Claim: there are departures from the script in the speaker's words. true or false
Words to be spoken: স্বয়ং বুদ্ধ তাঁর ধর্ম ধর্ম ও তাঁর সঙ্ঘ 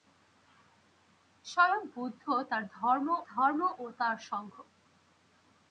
false